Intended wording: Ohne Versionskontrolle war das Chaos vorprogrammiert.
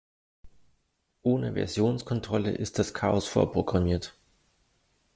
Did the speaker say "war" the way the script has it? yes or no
no